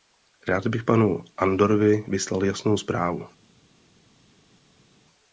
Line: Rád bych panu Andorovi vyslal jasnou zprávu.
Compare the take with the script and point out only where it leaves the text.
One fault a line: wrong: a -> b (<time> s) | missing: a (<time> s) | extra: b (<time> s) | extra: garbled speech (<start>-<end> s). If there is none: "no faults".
no faults